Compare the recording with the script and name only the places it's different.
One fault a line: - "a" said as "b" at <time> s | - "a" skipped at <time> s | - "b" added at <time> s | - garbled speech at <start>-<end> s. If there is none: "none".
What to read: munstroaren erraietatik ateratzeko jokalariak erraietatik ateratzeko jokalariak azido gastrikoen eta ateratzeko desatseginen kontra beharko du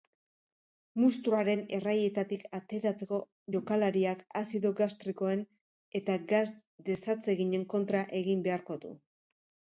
- "erraietatik ateratzeko jokalariak" skipped at 4.2 s
- "ateratzeko" said as "gas" at 6.3 s
- "egin" added at 8.2 s